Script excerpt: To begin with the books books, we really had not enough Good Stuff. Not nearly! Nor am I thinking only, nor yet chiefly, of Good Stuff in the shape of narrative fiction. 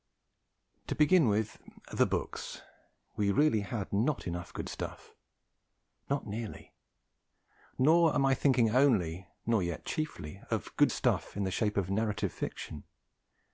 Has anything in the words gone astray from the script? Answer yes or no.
yes